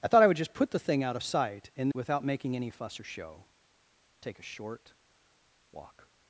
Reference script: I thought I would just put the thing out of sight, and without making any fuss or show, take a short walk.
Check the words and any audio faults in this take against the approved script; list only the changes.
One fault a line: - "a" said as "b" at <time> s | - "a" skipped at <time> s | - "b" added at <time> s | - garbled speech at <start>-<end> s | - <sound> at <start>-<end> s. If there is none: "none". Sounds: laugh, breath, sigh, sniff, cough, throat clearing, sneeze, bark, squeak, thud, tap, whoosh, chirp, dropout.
none